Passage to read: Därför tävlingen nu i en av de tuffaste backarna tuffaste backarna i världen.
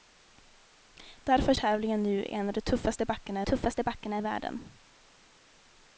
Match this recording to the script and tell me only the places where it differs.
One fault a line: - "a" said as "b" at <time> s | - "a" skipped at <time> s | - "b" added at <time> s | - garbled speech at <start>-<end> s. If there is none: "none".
none